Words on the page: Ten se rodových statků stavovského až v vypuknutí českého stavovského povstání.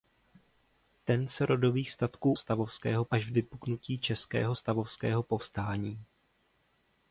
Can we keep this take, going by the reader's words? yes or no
yes